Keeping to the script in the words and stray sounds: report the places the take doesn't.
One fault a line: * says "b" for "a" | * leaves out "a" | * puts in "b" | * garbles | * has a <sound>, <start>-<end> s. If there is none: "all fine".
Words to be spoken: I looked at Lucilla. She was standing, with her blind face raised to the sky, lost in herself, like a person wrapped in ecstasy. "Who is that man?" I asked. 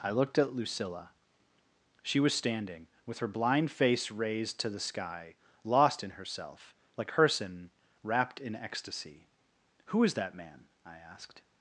* leaves out "a"